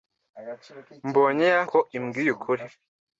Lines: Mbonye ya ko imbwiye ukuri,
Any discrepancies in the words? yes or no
no